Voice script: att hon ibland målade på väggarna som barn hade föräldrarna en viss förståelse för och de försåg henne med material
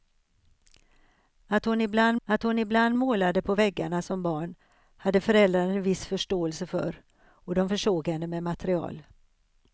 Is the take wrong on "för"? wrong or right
right